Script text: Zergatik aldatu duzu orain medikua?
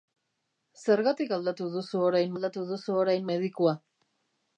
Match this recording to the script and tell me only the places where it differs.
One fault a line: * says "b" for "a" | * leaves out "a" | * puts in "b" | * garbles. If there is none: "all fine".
* puts in "aldatu duzu orain"